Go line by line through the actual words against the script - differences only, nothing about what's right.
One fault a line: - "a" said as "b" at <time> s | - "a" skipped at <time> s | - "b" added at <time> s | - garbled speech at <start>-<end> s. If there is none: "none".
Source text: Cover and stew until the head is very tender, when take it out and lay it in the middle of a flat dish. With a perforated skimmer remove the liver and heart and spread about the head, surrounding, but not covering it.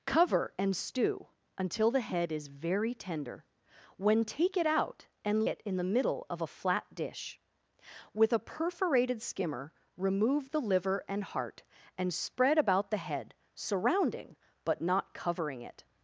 - "lay" skipped at 5.5 s